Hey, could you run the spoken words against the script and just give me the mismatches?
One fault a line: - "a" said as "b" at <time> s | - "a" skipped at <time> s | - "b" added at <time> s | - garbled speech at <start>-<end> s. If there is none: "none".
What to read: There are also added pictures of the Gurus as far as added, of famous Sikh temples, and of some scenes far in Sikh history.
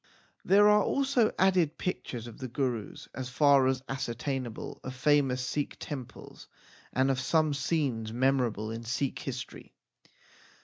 - "added" said as "ascertainable" at 3.9 s
- "far" said as "memorable" at 8.1 s